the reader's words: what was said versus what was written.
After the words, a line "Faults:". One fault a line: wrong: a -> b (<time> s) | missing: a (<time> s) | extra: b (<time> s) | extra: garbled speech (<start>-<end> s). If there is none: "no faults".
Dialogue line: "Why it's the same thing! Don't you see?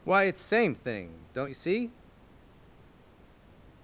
"Why it's same thing! Don't you see?
Faults:
missing: the (0.4 s)